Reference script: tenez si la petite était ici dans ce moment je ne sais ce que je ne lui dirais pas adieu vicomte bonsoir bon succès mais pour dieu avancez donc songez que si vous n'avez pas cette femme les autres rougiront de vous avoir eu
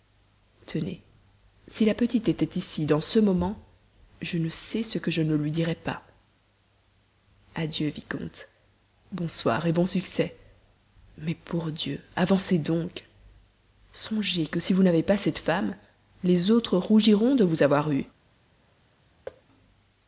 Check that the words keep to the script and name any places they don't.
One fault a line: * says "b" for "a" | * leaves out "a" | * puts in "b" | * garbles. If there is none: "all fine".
all fine